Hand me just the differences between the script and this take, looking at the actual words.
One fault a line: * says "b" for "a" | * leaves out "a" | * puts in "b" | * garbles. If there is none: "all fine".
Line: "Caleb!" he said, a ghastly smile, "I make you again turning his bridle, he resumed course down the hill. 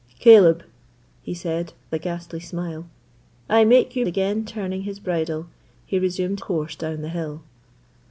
all fine